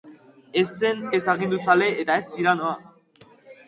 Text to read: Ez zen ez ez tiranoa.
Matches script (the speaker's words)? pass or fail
fail